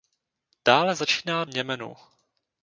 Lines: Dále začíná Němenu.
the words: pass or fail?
pass